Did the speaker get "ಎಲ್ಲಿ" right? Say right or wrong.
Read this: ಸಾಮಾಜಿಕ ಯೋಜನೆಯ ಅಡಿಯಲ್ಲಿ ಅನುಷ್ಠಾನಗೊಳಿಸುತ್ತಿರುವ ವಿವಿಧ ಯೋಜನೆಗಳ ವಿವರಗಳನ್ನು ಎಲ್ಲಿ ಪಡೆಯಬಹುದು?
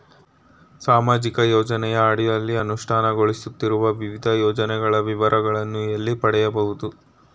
right